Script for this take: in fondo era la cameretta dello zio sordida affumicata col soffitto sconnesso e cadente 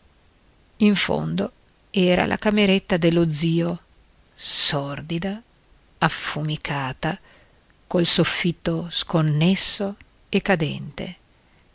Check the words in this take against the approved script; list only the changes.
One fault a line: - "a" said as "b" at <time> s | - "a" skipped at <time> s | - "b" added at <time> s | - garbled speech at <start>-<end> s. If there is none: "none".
none